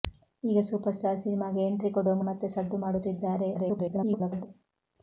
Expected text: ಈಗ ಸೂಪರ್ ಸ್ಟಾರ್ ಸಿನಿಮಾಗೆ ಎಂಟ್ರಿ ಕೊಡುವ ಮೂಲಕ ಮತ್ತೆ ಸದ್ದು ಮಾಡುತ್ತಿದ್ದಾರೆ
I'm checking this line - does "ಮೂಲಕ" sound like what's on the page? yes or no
no